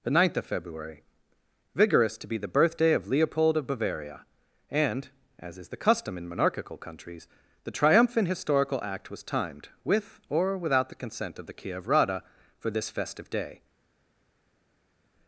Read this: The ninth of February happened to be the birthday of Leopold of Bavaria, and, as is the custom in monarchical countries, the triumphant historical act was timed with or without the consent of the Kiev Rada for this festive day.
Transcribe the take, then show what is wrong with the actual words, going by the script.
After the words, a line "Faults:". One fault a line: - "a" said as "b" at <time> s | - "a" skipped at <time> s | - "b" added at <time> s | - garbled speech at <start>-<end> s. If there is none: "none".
The ninth of February vigorous to be the birthday of Leopold of Bavaria, and, as is the custom in monarchical countries, the triumphant historical act was timed with or without the consent of the Kiev Rada for this festive day.
Faults:
- "happened" said as "vigorous" at 1.8 s